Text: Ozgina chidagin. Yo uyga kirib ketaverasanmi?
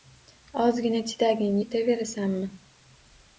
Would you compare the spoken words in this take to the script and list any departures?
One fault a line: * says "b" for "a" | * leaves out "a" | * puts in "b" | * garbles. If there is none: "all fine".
* leaves out "Yo uyga kirib"